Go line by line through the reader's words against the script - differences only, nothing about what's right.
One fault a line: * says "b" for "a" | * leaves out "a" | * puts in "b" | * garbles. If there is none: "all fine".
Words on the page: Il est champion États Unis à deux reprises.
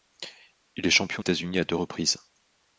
all fine